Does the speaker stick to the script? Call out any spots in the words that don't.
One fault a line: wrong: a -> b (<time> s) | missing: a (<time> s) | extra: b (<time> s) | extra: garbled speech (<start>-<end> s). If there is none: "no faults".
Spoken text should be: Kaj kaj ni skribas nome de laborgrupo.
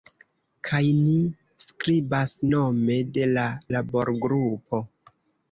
missing: kaj (0.8 s)
extra: la (3.3 s)